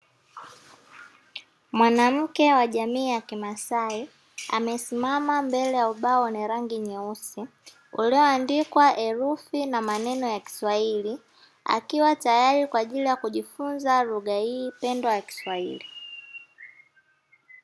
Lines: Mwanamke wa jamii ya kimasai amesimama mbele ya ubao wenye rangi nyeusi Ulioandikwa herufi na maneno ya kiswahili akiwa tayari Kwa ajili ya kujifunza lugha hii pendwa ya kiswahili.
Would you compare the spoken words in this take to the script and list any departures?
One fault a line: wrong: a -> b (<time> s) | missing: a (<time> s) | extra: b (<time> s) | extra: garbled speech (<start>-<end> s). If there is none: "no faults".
no faults